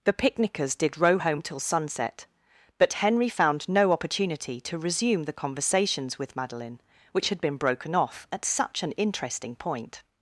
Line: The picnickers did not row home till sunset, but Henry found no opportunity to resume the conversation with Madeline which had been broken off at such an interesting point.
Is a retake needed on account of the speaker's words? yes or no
yes